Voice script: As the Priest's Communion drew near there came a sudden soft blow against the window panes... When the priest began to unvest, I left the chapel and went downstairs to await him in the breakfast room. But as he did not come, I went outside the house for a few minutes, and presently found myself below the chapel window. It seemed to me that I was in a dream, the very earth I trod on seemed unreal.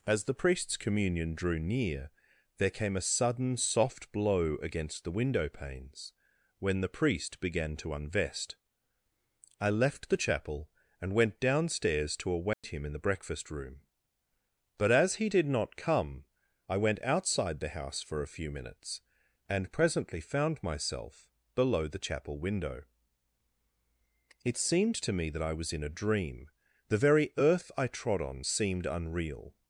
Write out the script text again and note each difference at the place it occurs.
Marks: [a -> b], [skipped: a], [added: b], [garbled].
As the Priest's Communion drew near there came a sudden soft blow against the window panes... When the priest began to unvest, I left the chapel and went downstairs to await him in the breakfast room. But as he did not come, I went outside the house for a few minutes, and presently found myself below the chapel window. It seemed to me that I was in a dream, the very earth I trod on seemed unreal.